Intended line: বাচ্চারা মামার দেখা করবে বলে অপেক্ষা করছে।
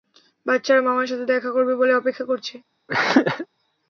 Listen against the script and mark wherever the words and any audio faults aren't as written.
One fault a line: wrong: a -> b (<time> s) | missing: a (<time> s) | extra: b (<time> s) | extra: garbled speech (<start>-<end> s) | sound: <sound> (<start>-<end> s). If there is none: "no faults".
extra: সাথে (1.1 s)
sound: throat clearing (2.9-3.5 s)